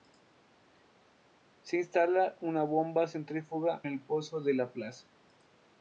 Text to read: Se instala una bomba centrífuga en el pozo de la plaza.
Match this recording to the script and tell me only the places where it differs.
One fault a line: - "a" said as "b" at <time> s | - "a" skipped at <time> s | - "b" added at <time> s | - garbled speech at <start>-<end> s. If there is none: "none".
- "en" skipped at 3.8 s